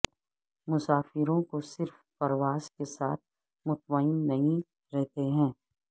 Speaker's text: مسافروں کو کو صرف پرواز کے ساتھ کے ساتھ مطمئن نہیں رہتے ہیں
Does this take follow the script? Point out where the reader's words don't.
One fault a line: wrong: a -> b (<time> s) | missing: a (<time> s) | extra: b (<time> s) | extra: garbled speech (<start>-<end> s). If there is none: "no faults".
missing: کو (1.6 s)
missing: کے ساتھ (3.2 s)